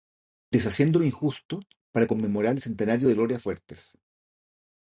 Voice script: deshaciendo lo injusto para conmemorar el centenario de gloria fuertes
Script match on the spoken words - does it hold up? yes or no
yes